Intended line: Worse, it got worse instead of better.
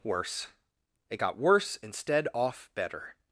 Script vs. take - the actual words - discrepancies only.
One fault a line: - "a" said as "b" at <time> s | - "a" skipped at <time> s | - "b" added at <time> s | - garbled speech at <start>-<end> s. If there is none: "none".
- "of" said as "off" at 2.3 s